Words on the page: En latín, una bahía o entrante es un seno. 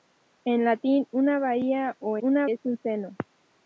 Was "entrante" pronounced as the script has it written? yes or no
no